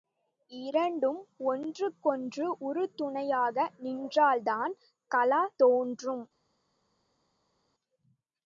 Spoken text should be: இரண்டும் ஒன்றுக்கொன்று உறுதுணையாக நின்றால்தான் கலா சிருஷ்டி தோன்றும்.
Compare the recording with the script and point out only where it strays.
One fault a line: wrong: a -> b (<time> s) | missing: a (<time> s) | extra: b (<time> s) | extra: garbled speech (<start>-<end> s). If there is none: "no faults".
missing: சிருஷ்டி (5.4 s)